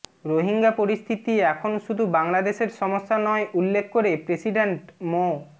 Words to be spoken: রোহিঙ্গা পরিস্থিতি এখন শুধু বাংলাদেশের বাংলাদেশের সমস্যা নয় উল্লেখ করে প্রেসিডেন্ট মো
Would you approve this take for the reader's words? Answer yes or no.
no